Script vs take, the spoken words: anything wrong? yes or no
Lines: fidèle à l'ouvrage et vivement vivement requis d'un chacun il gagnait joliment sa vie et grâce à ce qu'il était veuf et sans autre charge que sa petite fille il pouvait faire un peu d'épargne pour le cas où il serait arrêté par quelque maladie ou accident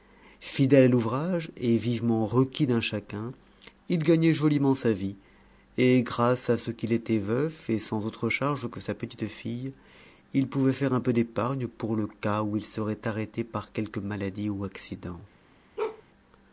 yes